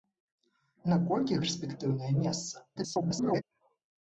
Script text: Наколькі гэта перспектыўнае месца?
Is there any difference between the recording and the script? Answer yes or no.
yes